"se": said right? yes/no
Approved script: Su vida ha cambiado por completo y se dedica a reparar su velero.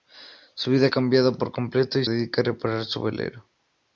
no